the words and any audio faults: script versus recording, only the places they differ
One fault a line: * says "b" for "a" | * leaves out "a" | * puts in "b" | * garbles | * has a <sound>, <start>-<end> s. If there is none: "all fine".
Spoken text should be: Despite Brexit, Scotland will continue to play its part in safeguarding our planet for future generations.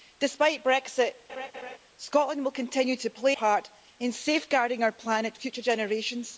* has a laugh, 1.3-1.8 s
* leaves out "its"
* leaves out "for"